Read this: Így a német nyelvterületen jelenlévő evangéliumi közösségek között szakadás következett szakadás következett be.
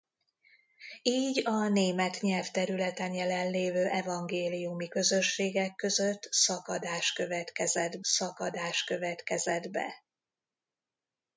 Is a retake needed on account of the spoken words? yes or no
no